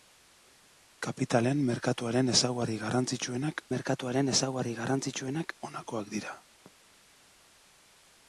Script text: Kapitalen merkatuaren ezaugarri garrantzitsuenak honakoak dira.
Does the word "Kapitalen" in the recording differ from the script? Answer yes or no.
no